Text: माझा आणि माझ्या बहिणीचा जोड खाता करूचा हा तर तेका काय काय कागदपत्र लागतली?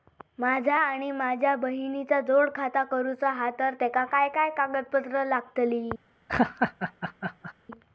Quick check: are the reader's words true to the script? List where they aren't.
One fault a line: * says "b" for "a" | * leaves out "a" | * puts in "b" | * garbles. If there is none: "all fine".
all fine